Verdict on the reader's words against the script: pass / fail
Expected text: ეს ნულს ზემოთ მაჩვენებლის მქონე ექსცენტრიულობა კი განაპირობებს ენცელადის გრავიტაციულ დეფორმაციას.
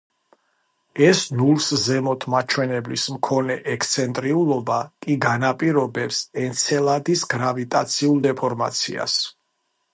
pass